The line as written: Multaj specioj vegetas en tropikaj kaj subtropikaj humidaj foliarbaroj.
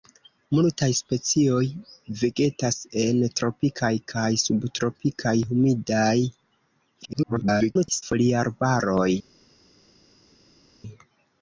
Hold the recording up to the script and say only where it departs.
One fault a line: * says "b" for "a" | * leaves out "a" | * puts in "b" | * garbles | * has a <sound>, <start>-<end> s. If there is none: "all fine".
* garbles